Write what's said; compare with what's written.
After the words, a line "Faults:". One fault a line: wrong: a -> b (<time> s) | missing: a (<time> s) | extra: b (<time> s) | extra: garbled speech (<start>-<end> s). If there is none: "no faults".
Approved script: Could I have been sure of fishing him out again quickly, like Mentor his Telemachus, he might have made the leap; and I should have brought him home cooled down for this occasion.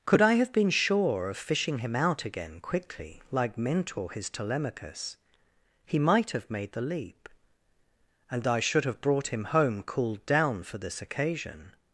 Could I have been sure of fishing him out again quickly, like Mentor his Telemachus, he might have made the leap; and I should have brought him home cooled down for this occasion.
Faults:
no faults